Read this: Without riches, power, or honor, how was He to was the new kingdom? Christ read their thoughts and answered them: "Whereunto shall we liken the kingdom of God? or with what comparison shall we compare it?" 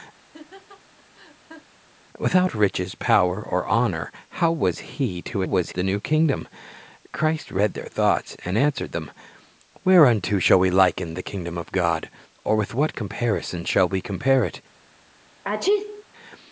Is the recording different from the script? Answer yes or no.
no